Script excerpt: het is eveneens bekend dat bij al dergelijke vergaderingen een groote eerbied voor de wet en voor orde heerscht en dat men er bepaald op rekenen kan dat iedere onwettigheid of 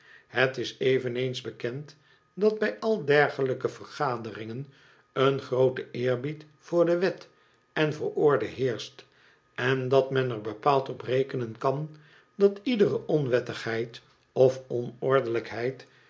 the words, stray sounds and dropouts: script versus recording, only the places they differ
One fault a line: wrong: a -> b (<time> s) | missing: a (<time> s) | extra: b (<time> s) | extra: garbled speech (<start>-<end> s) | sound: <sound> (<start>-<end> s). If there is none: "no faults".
no faults